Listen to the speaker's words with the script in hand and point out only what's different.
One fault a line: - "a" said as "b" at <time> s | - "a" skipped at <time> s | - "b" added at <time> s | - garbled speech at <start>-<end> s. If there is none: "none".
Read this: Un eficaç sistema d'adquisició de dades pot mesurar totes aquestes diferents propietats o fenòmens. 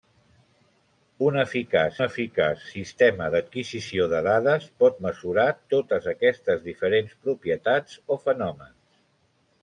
- "eficaç" added at 2.0 s